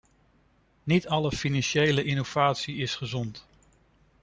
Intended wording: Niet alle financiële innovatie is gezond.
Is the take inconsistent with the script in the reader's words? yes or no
no